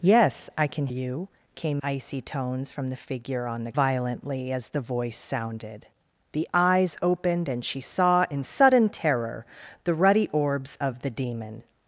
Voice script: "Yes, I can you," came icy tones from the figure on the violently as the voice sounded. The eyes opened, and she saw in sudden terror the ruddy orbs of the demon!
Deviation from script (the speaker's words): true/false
false